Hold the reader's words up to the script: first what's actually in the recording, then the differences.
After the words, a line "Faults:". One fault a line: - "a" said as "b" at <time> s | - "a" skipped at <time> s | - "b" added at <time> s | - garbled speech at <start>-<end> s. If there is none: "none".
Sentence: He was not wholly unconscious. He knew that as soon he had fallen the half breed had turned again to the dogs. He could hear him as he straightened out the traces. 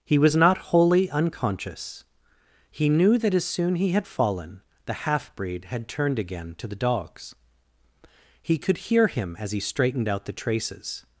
He was not wholly unconscious. He knew that as soon he had fallen the half breed had turned again to the dogs. He could hear him as he straightened out the traces.
Faults:
none